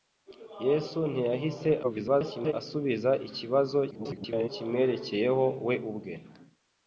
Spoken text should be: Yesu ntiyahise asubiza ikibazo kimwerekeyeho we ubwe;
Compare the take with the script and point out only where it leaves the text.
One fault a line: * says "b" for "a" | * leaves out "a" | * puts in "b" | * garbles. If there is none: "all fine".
* garbles
* garbles